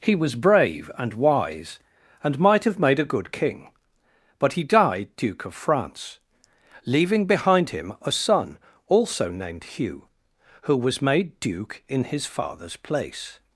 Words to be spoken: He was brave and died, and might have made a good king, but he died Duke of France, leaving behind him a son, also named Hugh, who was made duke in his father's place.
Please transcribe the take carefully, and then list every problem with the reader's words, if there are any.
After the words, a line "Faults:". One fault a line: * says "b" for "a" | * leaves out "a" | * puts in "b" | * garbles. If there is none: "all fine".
He was brave and wise, and might have made a good king, but he died Duke of France, leaving behind him a son, also named Hugh, who was made duke in his father's place.
Faults:
* says "wise" for "died"